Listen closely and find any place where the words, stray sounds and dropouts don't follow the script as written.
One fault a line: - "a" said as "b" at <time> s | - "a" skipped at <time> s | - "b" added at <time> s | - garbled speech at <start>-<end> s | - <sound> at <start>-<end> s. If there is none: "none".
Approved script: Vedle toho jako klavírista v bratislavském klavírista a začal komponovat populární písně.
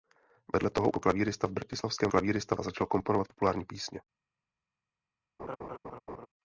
- laugh at 5.4-6.3 s